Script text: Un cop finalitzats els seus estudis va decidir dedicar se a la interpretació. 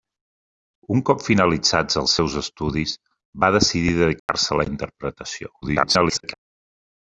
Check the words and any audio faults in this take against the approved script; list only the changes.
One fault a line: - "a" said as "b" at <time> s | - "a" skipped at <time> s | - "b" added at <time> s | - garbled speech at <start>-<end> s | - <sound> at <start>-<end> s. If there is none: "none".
- dropout at 4.2-4.3 s
- garbled speech at 5.6-6.3 s